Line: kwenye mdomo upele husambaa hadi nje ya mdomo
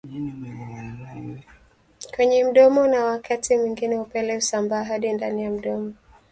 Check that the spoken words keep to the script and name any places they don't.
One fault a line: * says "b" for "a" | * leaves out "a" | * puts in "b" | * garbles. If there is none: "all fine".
* puts in "na wakati mwingine"
* says "ndani" for "nje"